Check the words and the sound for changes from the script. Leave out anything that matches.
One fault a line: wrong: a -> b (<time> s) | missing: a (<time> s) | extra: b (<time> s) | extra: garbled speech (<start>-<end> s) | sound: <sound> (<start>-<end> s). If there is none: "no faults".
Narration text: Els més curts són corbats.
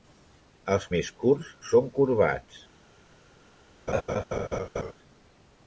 sound: laugh (3.9-4.9 s)